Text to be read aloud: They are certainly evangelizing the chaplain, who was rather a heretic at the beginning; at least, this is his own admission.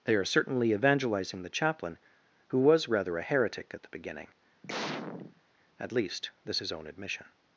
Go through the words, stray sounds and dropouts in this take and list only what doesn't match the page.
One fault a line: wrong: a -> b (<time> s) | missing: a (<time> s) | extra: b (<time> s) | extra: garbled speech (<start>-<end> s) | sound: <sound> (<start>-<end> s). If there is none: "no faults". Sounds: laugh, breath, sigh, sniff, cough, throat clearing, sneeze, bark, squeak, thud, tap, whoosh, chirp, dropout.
sound: sneeze (4.6-5.4 s)
missing: is (6.6 s)